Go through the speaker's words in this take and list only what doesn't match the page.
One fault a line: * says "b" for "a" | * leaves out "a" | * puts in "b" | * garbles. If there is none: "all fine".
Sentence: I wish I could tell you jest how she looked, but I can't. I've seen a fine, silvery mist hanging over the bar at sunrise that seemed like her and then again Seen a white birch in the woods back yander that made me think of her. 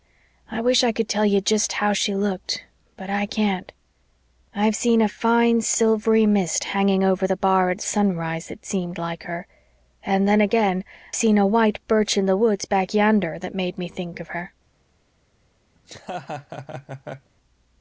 all fine